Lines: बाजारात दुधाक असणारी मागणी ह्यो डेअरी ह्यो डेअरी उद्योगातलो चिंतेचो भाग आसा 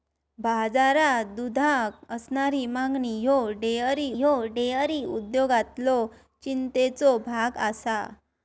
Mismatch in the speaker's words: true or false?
false